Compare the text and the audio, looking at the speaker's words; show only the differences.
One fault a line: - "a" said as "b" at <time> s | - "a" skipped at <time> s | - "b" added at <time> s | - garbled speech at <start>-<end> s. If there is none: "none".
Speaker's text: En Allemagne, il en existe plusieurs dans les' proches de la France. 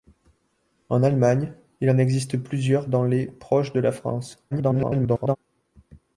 - garbled speech at 4.5-5.4 s